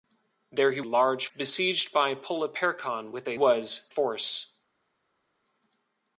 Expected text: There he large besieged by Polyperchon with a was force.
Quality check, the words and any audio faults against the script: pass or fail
pass